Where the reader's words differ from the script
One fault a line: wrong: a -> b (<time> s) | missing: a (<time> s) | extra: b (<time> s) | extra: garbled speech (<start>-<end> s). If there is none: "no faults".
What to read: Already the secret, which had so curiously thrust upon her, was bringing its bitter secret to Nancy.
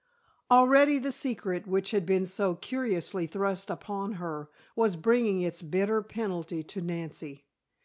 extra: been (2.0 s)
wrong: secret -> penalty (6.0 s)